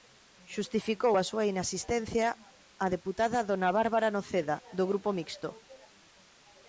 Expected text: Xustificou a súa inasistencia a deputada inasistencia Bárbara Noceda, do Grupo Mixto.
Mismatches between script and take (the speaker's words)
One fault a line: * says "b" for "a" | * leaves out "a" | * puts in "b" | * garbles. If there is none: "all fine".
* says "dona" for "inasistencia"